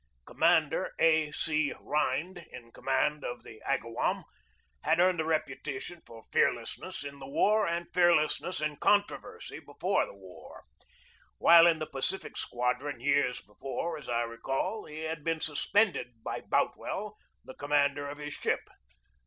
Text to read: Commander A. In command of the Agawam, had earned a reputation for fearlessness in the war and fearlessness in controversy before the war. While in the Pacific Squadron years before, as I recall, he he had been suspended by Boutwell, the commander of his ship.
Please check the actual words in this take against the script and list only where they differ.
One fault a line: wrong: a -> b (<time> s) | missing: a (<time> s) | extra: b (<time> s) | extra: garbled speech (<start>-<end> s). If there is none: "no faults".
extra: C Rhind (1.3 s)
missing: he (15.0 s)